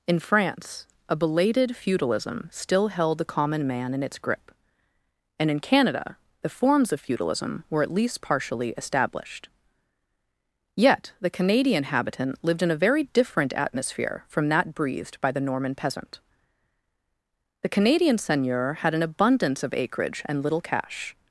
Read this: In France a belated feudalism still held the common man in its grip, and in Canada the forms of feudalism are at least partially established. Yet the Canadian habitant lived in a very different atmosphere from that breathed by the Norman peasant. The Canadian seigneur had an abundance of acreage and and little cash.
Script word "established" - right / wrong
right